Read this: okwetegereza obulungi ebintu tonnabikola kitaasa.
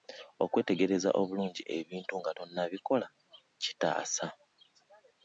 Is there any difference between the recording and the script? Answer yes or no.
yes